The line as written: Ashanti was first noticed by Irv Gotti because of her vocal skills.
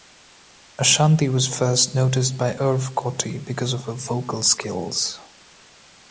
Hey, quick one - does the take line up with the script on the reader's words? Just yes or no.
yes